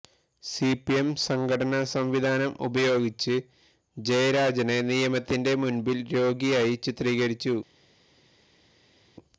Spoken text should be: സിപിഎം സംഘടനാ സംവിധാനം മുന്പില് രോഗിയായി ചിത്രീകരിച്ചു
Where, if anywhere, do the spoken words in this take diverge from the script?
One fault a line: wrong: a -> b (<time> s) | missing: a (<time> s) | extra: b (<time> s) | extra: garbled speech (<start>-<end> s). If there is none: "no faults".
extra: ഉപയോഗിച്ച് ജയരാജനെ നിയമത്തിന്റെ (2.7 s)